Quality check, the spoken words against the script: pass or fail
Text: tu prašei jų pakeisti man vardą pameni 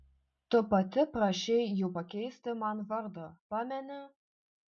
fail